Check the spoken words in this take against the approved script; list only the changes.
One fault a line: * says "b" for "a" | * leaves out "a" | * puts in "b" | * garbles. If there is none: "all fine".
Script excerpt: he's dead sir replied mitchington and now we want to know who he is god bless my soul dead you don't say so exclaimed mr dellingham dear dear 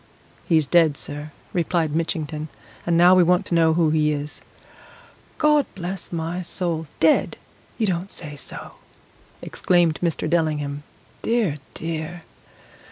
all fine